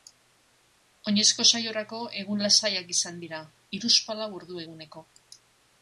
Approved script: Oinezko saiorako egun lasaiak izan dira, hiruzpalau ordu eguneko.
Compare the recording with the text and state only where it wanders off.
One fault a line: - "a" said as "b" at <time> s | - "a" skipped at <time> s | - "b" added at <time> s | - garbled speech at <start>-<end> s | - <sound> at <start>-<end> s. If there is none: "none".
none